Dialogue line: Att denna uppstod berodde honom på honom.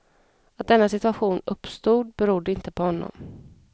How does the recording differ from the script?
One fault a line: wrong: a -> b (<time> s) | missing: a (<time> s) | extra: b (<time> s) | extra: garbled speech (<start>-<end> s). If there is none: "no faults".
extra: situation (0.9 s)
wrong: honom -> inte (2.5 s)